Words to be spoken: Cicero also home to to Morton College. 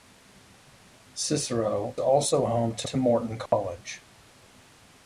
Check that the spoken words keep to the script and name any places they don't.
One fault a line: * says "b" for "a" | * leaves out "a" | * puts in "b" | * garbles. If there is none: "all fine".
all fine